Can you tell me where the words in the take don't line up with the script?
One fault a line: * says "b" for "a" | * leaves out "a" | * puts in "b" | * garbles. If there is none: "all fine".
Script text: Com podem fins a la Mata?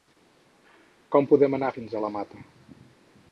* puts in "anar"